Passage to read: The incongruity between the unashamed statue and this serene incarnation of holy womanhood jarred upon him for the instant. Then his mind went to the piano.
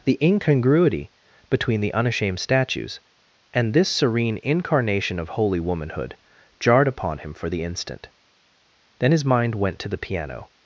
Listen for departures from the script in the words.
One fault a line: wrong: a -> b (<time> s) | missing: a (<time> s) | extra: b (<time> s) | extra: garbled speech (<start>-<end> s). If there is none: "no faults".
wrong: statue -> statues (2.4 s)